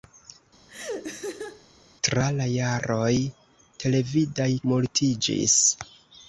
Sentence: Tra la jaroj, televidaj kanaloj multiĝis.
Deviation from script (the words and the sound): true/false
true